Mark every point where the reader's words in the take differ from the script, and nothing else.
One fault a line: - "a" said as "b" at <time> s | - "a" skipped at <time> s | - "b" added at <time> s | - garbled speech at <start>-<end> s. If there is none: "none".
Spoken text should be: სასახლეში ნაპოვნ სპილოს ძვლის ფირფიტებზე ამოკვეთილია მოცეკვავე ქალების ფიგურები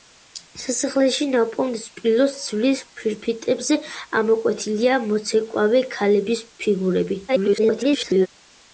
- garbled speech at 7.3-8.3 s